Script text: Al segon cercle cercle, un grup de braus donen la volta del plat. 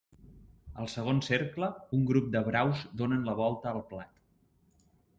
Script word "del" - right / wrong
wrong